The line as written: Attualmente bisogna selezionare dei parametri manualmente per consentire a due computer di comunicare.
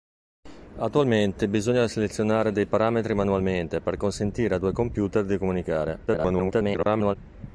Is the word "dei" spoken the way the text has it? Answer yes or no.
yes